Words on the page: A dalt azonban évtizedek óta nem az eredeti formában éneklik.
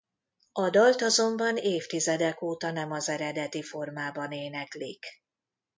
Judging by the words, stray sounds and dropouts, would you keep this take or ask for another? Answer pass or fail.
pass